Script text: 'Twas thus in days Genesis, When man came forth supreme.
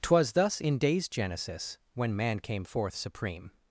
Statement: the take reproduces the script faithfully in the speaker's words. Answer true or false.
true